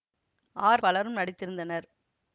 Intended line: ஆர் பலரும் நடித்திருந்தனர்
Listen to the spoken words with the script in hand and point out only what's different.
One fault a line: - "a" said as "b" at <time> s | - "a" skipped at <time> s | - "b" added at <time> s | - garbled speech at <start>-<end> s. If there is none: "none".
none